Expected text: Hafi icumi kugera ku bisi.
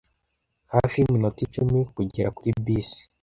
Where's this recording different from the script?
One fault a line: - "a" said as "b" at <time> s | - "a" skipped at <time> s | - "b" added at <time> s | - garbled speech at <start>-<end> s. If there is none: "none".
- "yiminota" added at 1.0 s
- "ku" said as "kuri" at 2.4 s